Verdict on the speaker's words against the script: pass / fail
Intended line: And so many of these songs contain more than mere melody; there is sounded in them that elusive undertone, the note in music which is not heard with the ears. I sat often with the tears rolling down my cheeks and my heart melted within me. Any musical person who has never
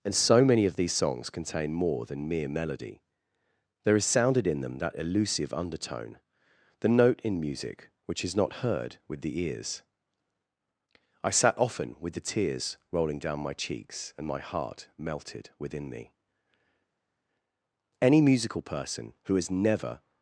pass